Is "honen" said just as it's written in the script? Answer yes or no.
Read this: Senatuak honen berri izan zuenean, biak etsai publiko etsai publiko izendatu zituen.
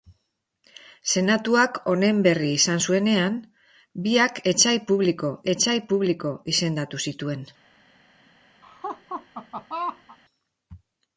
yes